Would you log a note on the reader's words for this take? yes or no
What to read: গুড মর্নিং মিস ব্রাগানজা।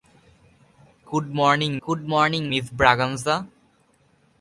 yes